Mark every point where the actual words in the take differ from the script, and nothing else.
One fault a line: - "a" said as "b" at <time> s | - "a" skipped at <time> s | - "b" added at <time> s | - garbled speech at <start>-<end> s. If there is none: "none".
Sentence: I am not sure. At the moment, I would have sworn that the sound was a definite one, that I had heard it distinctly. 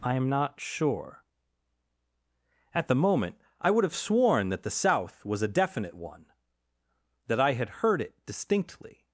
- "sound" said as "south" at 4.7 s